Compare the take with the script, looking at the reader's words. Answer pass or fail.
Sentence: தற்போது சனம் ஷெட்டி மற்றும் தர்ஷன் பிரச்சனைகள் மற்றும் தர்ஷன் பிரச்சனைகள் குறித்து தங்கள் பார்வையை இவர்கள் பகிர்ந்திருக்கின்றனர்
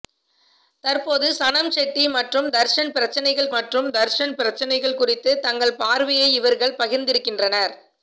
pass